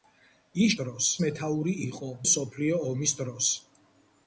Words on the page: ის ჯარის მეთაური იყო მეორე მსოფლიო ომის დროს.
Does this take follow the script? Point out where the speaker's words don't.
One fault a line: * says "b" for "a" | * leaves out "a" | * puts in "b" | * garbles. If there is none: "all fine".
* says "დროს" for "ჯარის"
* leaves out "მეორე"